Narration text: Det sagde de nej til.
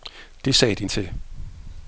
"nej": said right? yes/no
no